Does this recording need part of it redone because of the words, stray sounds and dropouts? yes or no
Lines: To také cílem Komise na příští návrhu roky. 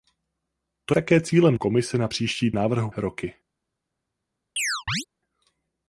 yes